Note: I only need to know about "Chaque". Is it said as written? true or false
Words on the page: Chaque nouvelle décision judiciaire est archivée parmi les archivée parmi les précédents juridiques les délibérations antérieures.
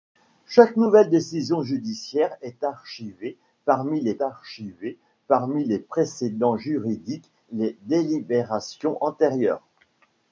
true